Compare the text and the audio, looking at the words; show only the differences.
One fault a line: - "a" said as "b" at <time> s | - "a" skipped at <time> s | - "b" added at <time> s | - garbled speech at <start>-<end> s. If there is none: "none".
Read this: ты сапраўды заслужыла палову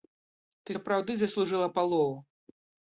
none